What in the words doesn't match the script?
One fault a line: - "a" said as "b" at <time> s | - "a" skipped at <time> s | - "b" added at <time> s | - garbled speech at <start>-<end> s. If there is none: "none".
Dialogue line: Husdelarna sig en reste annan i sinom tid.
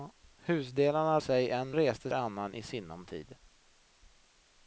none